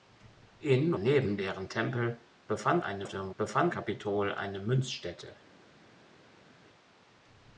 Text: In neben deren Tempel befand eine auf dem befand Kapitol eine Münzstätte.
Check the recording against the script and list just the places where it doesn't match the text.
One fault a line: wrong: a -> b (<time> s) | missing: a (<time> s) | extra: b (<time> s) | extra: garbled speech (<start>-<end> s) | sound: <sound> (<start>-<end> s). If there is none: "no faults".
no faults